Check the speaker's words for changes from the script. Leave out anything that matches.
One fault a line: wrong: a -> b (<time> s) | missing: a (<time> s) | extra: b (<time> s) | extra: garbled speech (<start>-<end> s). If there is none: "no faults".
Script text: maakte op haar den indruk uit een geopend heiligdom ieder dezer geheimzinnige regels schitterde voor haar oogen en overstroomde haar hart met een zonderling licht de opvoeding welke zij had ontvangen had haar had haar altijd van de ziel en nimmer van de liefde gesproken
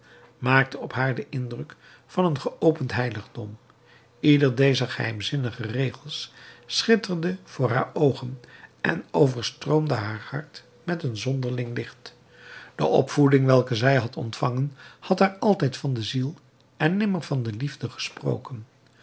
wrong: uit -> van (2.0 s)
missing: had haar (15.3 s)